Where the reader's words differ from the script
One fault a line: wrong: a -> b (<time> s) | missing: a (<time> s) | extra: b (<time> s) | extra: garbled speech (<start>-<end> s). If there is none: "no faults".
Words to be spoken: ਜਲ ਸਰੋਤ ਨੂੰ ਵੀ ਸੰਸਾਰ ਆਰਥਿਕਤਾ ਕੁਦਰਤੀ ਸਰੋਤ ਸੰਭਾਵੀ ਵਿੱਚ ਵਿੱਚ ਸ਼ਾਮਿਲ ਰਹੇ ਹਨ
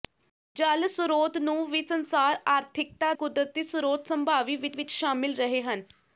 no faults